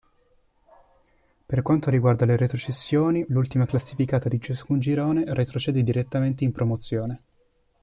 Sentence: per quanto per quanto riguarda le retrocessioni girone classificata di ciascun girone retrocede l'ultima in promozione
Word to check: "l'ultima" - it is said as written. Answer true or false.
false